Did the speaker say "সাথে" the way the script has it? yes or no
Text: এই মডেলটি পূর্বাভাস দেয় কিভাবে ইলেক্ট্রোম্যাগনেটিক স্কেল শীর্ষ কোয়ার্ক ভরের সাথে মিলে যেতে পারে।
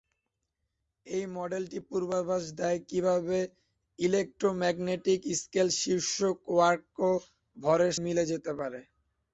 no